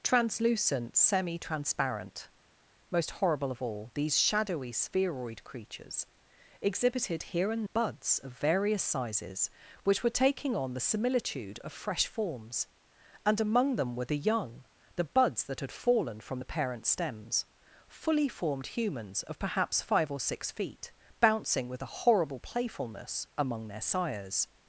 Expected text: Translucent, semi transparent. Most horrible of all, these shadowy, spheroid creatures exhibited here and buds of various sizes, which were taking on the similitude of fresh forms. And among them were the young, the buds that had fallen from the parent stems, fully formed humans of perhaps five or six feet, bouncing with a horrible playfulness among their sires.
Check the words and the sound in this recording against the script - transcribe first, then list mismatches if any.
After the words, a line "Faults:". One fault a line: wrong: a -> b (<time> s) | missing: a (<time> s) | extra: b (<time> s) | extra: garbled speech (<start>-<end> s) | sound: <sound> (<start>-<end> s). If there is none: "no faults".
Translucent, semi transparent. Most horrible of all, these shadowy, spheroid creatures exhibited here and buds of various sizes, which were taking on the similitude of fresh forms. And among them were the young, the buds that had fallen from the parent stems, fully formed humans of perhaps five or six feet, bouncing with a horrible playfulness among their sires.
Faults:
no faults